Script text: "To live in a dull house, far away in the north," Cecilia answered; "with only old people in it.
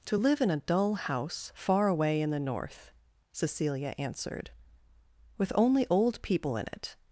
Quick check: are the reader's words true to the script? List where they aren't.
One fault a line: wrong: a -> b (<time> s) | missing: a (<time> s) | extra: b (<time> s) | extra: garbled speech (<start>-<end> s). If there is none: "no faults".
no faults